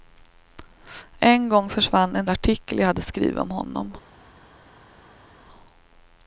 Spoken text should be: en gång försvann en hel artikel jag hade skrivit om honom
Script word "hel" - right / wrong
wrong